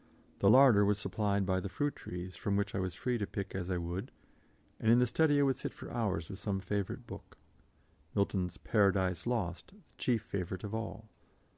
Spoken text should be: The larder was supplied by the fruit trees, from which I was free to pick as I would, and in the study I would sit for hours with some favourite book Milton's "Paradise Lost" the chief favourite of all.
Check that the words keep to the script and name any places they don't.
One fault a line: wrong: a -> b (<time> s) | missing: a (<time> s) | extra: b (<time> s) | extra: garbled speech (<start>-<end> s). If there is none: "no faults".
no faults